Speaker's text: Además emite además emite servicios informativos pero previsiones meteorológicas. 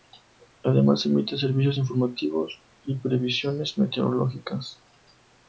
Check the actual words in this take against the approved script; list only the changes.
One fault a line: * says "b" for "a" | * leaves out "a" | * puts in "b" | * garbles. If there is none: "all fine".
* leaves out "además emite"
* says "y" for "pero"